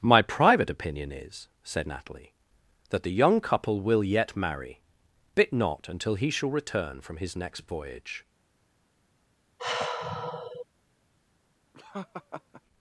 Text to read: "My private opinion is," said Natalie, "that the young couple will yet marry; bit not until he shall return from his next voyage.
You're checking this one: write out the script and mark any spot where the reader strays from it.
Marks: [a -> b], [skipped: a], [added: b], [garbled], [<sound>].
"My private opinion is," said Natalie, "that the young couple will yet marry; bit not until he shall return from his next voyage. [sigh] [laugh]